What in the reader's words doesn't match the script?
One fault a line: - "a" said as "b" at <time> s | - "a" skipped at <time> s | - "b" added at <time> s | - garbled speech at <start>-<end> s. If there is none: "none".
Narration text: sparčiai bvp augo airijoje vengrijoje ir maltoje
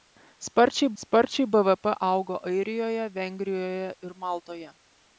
- "sparčiai" added at 1.0 s